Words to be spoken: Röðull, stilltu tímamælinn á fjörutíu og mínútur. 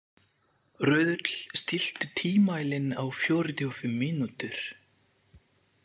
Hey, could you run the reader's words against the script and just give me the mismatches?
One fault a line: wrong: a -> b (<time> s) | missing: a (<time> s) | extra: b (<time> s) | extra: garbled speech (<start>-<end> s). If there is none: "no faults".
extra: fimm (3.8 s)